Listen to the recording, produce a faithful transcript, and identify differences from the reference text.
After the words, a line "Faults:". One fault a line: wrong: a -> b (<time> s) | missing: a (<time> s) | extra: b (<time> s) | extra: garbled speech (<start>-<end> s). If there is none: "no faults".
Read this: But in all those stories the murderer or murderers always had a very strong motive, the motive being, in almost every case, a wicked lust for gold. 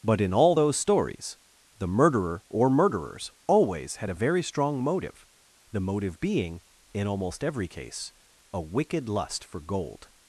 But in all those stories the murderer or murderers always had a very strong motive, the motive being, in almost every case, a wicked lust for gold.
Faults:
no faults